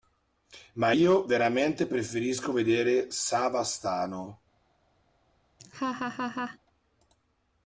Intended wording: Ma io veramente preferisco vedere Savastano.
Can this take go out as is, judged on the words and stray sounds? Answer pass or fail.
fail